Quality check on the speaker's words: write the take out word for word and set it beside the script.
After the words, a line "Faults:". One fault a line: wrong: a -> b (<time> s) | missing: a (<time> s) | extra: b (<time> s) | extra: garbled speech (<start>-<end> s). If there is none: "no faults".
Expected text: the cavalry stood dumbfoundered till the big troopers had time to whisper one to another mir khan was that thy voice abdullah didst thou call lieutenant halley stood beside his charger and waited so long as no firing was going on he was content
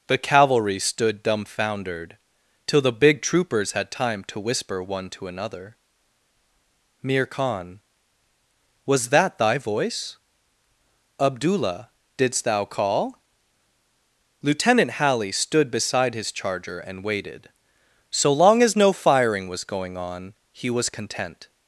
the cavalry stood dumbfoundered till the big troopers had time to whisper one to another mir khan was that thy voice abdullah didst thou call lieutenant halley stood beside his charger and waited so long as no firing was going on he was content
Faults:
no faults